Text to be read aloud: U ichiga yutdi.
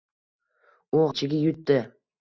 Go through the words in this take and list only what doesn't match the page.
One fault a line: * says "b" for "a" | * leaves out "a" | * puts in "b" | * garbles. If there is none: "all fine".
all fine